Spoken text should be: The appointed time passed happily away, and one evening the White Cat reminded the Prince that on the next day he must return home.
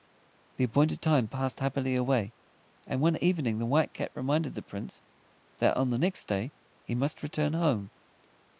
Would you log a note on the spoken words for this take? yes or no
no